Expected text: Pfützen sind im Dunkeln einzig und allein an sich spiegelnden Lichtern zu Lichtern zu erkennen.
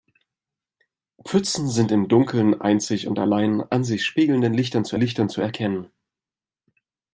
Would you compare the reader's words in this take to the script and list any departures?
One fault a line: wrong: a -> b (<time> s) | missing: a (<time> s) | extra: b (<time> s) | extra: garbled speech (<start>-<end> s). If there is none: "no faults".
no faults